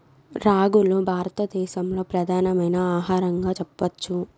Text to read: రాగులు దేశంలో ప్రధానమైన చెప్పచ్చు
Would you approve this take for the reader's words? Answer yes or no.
no